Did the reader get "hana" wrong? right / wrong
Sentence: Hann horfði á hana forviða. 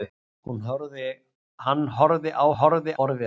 wrong